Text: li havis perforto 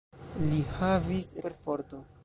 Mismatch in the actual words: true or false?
false